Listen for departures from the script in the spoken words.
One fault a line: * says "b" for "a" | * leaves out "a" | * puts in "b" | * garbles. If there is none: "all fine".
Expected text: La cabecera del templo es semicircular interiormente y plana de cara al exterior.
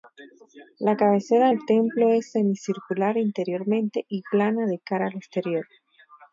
all fine